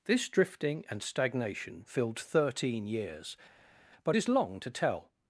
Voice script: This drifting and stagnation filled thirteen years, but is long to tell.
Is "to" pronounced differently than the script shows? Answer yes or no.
no